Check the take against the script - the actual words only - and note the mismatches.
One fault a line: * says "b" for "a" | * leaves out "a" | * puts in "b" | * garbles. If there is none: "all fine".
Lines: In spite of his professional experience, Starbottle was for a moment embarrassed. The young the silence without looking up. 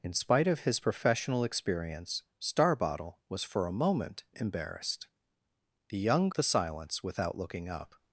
all fine